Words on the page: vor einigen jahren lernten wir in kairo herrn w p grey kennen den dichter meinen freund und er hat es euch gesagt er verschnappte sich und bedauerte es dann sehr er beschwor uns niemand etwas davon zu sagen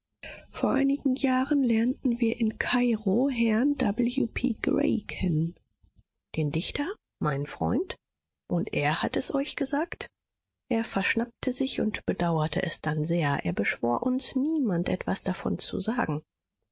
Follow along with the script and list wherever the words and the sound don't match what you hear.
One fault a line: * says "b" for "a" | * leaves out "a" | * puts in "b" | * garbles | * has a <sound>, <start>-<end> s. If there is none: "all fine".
all fine